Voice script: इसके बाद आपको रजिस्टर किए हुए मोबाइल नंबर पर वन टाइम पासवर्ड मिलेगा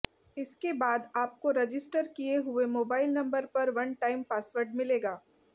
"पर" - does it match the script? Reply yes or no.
yes